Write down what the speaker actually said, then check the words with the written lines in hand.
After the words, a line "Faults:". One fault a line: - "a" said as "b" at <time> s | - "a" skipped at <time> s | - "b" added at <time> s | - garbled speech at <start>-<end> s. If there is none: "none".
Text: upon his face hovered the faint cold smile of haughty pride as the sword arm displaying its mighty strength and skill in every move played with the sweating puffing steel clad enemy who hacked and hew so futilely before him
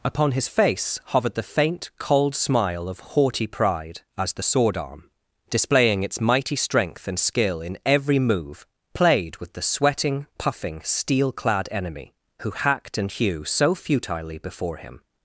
upon his face hovered the faint cold smile of haughty pride as the sword arm displaying its mighty strength and skill in every move played with the sweating puffing steel clad enemy who hacked and hew so futilely before him
Faults:
none